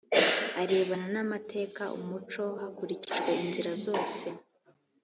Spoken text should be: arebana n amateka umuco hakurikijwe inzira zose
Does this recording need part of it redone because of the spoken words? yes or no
no